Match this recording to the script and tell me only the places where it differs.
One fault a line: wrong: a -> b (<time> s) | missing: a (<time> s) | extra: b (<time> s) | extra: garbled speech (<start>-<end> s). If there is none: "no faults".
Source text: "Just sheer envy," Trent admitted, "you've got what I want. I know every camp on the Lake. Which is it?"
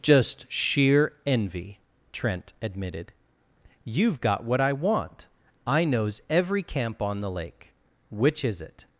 wrong: know -> knows (5.8 s)